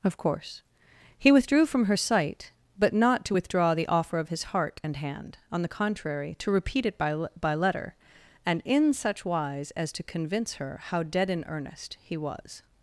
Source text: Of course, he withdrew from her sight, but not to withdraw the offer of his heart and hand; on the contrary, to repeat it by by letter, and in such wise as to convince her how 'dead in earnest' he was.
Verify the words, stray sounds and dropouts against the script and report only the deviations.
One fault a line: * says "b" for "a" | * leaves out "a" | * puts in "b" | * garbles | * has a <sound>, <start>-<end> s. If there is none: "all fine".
all fine